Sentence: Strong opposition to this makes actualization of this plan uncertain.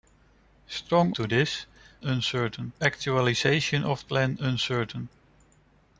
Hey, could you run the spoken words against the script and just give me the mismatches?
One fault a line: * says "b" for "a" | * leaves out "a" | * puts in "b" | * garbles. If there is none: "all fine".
* leaves out "opposition"
* says "uncertain" for "makes"
* leaves out "this"